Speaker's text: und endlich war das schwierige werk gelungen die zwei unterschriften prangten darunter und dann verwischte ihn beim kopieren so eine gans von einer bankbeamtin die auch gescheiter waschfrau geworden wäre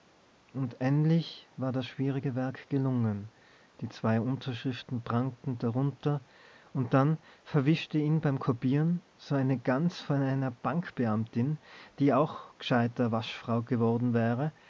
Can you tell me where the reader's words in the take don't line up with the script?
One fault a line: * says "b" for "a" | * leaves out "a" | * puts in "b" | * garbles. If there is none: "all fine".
all fine